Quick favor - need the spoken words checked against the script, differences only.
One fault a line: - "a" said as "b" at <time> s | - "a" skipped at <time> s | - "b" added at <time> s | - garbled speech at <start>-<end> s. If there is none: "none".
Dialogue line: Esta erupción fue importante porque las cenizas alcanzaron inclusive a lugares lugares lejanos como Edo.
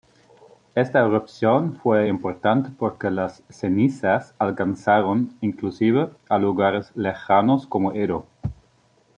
- "lugares" skipped at 6.9 s